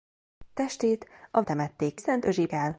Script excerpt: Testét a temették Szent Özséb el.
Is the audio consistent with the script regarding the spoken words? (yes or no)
yes